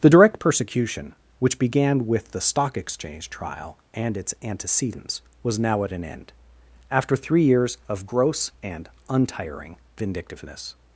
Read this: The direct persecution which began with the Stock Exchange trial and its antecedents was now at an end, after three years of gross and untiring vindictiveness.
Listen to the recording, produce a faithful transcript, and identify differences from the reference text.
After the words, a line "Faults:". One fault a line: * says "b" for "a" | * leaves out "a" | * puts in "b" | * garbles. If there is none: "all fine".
The direct persecution which began with the Stock Exchange trial and its antecedents was now at an end, after three years of gross and untiring vindictiveness.
Faults:
all fine